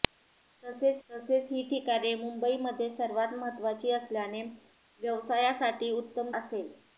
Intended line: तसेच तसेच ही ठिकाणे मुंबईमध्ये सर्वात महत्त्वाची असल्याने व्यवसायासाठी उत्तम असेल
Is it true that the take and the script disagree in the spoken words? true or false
false